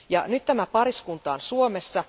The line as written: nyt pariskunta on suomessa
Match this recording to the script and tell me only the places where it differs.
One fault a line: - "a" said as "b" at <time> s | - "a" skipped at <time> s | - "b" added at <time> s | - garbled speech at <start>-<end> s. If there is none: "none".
- "tämä" added at 0.5 s